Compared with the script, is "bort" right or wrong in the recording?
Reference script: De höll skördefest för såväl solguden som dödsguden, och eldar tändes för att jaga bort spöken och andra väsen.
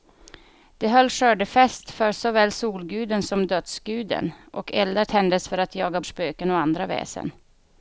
wrong